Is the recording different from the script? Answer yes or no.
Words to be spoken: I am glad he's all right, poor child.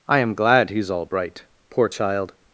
yes